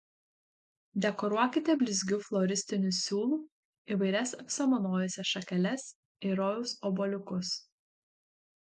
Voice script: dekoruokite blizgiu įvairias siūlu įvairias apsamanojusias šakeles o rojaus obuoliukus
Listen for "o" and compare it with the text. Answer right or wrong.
wrong